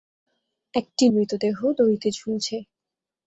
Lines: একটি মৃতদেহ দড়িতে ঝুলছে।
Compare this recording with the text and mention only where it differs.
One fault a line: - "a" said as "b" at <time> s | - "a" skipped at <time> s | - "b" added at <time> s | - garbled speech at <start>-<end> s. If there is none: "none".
none